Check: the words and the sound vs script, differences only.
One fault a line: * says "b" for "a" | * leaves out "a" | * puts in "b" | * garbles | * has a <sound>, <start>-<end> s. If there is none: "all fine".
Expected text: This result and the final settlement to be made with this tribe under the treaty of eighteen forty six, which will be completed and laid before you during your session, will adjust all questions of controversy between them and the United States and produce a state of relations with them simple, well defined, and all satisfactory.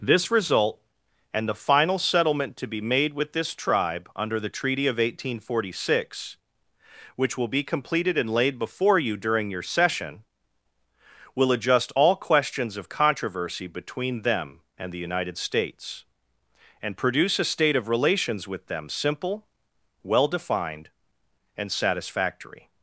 * leaves out "all"